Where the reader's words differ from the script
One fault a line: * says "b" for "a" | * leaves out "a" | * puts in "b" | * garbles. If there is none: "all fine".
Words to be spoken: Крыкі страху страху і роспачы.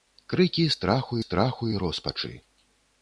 all fine